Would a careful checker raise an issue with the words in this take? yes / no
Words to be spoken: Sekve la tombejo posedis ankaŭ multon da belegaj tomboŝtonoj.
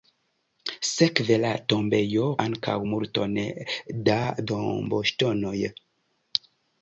yes